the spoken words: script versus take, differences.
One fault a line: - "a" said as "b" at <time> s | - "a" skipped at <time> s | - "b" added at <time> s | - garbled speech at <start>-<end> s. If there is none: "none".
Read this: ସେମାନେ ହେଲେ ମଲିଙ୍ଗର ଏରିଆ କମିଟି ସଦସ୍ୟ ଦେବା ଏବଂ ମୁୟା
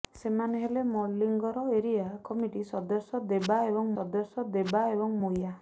- "ସଦସ୍ୟ ଦେବା ଏବଂ" added at 3.9 s